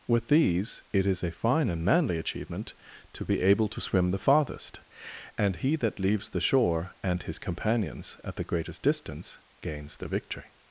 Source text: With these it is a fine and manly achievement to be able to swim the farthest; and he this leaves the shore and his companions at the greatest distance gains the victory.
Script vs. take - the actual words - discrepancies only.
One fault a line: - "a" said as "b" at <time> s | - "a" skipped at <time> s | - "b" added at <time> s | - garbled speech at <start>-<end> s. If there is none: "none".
- "this" said as "that" at 5.8 s